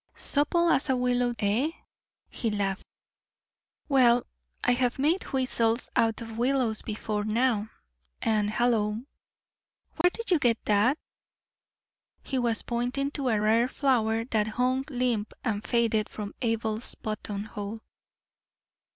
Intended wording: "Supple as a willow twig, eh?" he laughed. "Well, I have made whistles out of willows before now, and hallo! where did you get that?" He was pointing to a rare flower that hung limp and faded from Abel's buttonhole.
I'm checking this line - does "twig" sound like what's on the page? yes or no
no